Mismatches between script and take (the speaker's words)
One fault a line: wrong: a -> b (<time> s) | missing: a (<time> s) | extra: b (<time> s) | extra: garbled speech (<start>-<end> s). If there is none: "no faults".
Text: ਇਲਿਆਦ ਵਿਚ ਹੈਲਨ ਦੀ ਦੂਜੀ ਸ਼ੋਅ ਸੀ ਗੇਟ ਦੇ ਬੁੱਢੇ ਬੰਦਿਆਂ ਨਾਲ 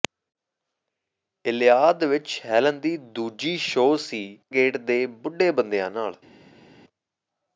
no faults